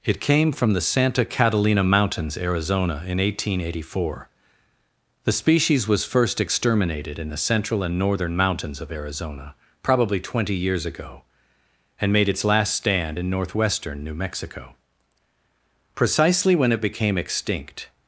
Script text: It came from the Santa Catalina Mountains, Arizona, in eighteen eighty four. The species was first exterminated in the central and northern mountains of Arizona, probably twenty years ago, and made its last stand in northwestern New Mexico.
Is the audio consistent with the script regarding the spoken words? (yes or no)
no